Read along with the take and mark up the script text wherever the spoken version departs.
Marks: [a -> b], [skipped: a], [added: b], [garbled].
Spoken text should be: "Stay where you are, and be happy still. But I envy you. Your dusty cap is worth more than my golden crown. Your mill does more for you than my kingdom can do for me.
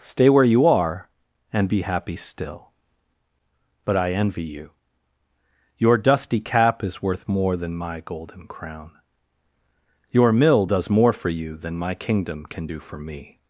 "Stay where you are, and be happy still. But I envy you. Your dusty cap is worth more than my golden crown. Your mill does more for you than my kingdom can do for me.